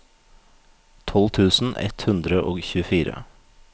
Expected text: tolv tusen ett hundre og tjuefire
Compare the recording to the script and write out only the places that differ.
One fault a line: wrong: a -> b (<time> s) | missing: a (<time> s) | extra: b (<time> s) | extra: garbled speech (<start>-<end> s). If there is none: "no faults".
no faults